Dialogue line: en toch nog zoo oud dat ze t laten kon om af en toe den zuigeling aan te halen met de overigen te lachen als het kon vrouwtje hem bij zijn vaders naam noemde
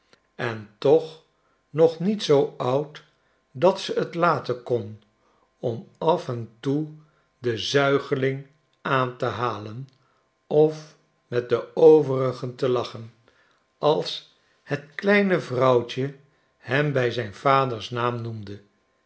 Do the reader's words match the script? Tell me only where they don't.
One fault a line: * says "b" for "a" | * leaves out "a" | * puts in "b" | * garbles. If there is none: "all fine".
* puts in "niet"
* puts in "of"
* says "kleine" for "kon"